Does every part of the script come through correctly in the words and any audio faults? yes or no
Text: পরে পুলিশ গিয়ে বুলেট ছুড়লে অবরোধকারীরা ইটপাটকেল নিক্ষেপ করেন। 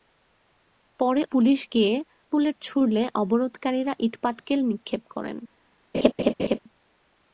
no